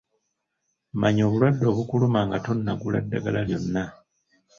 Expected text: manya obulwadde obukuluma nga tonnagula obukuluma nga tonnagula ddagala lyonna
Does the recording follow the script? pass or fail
fail